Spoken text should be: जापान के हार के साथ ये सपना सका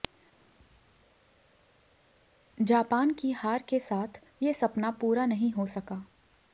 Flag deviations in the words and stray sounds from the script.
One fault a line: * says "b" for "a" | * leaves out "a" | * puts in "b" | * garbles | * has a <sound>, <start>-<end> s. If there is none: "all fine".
* says "की" for "के"
* puts in "पूरा नहीं हो"